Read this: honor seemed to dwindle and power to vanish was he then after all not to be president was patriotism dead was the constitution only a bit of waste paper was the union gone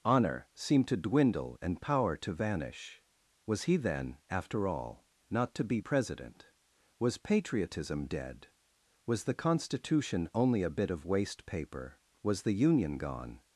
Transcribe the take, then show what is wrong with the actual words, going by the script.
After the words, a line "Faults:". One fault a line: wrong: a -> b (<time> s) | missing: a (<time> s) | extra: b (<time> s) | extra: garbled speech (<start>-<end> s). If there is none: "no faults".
honor seemed to dwindle and power to vanish was he then after all not to be president was patriotism dead was the constitution only a bit of waste paper was the union gone
Faults:
no faults